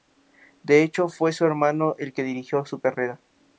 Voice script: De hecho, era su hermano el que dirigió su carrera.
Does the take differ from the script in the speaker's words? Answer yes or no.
yes